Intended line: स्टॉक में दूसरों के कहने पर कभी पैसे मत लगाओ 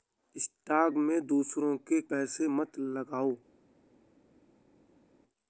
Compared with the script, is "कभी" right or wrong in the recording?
wrong